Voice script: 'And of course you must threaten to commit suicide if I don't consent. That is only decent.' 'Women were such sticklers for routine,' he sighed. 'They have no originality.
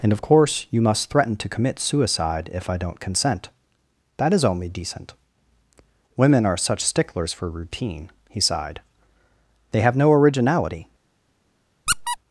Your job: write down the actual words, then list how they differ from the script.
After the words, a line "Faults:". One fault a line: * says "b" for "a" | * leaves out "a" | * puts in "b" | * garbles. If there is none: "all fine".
'And of course you must threaten to commit suicide if I don't consent. That is only decent.' 'Women are such sticklers for routine,' he sighed. 'They have no originality.
Faults:
* says "are" for "were"